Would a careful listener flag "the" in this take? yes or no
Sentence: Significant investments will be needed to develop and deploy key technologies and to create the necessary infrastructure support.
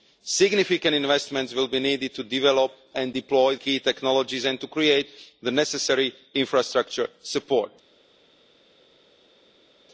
no